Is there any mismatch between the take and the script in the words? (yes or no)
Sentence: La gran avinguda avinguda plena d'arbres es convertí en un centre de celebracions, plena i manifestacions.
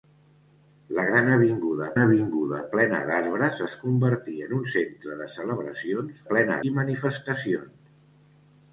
no